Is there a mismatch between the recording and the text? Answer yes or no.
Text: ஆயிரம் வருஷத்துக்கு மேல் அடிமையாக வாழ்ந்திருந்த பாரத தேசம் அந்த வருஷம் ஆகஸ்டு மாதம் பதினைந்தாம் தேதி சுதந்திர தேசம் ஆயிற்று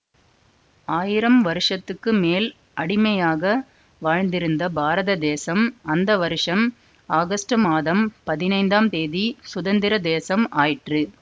no